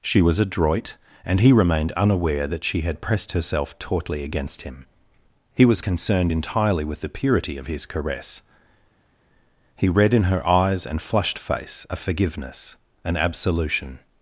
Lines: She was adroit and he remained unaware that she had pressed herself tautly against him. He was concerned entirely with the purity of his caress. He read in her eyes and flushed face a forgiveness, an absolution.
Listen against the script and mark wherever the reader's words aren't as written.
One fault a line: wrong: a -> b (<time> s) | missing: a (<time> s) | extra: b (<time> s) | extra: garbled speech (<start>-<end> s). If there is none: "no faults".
no faults